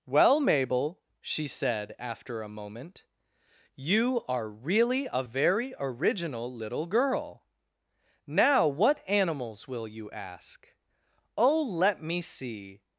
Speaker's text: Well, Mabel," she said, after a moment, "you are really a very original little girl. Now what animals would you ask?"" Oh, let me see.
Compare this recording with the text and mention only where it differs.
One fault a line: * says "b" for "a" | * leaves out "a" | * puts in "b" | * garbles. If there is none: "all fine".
* says "will" for "would"